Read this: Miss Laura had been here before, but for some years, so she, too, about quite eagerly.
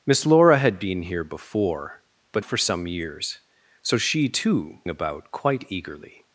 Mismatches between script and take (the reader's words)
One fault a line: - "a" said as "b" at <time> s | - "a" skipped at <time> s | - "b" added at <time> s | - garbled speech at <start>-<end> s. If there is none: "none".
none